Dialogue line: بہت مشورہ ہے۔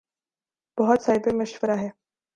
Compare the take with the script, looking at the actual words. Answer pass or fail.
fail